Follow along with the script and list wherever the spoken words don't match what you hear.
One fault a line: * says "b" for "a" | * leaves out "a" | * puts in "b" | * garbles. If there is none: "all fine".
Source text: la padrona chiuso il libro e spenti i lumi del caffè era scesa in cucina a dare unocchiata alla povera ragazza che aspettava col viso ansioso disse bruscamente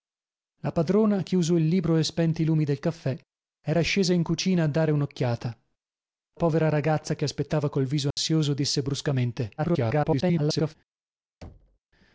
* leaves out "alla"
* garbles